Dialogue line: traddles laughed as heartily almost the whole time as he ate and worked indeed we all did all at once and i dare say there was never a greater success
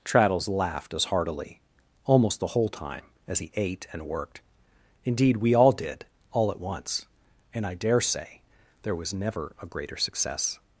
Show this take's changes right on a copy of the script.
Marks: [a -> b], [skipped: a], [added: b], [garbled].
traddles laughed as heartily almost the whole time as he ate and worked indeed we all did all at once and i dare say there was never a greater success